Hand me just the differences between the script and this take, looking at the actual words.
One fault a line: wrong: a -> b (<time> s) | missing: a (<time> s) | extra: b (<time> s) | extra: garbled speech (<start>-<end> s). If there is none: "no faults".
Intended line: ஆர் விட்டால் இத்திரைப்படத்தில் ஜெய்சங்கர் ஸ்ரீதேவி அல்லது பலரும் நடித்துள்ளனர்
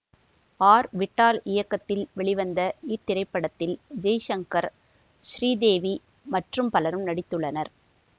extra: இயக்கத்தில் வெளிவந்த (1.5 s)
wrong: அல்லது -> மற்றும் (6.3 s)